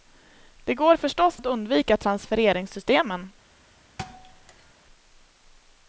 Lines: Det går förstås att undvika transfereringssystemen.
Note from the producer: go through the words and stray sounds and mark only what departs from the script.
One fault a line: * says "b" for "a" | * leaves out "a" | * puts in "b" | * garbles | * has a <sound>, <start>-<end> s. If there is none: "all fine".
* has a thud, 4.0-4.7 s